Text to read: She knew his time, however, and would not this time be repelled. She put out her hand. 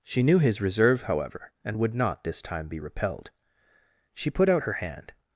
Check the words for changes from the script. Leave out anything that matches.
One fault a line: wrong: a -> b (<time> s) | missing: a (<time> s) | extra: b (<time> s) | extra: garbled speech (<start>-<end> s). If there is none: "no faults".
wrong: time -> reserve (0.6 s)